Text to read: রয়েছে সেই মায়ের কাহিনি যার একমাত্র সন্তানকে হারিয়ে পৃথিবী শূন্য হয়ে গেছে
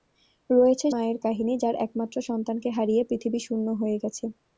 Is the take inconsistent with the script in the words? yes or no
yes